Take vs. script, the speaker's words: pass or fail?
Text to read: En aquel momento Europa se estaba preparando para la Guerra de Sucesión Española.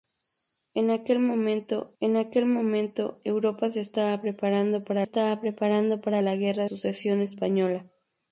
fail